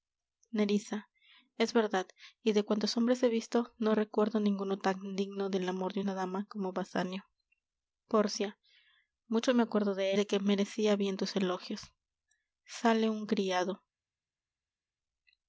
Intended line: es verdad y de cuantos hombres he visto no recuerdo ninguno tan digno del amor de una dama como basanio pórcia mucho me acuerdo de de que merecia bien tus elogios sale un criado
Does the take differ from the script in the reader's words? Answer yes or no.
no